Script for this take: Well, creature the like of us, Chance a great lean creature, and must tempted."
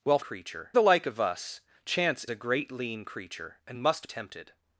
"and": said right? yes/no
yes